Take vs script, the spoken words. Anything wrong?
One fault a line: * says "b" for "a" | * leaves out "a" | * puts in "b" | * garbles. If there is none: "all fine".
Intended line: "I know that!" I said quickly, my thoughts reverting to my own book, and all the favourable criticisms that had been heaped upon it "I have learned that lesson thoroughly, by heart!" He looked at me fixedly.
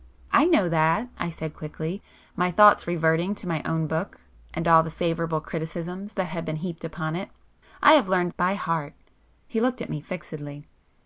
* leaves out "that lesson thoroughly"